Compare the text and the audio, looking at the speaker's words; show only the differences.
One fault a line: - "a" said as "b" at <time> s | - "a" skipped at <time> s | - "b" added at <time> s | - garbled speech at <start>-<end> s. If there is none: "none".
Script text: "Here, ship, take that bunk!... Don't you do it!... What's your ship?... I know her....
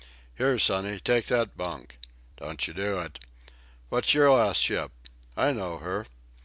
- "ship" said as "sonny" at 0.6 s
- "last" added at 4.3 s